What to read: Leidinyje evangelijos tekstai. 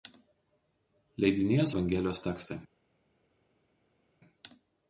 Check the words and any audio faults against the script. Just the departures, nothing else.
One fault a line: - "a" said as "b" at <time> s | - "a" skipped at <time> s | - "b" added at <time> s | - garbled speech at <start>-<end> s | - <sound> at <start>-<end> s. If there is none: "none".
none